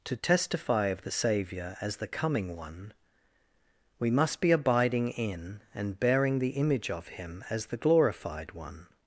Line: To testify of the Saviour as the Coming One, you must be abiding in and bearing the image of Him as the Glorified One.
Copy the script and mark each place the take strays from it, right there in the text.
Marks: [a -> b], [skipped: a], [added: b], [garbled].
To testify of the Saviour as the Coming One, [you -> we] must be abiding in and bearing the image of Him as the Glorified One.